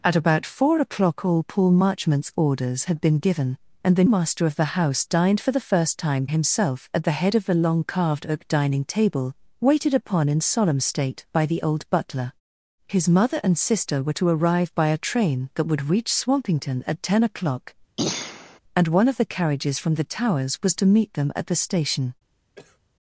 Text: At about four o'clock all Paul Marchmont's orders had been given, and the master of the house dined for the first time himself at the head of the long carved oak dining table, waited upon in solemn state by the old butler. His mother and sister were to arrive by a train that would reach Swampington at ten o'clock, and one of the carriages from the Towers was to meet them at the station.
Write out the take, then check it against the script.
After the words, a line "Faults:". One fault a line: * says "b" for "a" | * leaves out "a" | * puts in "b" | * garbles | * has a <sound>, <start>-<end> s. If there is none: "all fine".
At about four o'clock all Paul Marchmont's orders had been given, and the master of the house dined for the first time himself at the head of the long carved oak dining table, waited upon in solemn state by the old butler. His mother and sister were to arrive by a train that would reach Swampington at ten o'clock, and one of the carriages from the Towers was to meet them at the station.
Faults:
* has a throat clearing, 18.0-18.6 s
* has a cough, 22.6-22.8 s